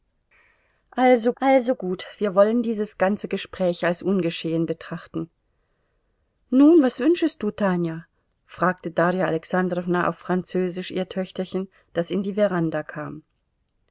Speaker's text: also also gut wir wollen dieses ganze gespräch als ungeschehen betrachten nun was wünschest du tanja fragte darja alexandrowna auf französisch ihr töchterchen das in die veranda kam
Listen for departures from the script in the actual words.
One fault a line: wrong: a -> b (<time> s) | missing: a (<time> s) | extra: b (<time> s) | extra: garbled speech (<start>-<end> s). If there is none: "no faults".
no faults